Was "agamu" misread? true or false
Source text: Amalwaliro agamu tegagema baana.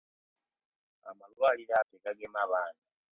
true